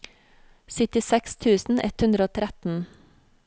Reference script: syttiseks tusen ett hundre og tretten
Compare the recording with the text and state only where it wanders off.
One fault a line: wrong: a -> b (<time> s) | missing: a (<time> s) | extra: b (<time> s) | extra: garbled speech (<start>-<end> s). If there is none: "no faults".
no faults